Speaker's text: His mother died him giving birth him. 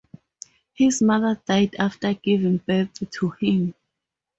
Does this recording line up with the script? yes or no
no